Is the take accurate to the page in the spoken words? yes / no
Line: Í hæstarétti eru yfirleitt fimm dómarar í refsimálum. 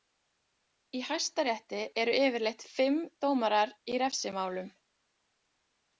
yes